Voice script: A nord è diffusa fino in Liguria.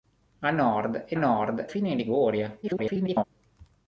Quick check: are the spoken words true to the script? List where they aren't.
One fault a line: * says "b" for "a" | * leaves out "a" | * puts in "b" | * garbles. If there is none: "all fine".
* says "nord" for "diffusa"
* garbles